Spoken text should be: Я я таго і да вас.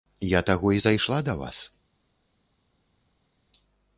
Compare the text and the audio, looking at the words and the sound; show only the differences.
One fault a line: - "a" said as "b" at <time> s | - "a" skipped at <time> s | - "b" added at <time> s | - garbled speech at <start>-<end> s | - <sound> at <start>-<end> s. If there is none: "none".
- "я" skipped at 0.4 s
- "зайшла" added at 0.8 s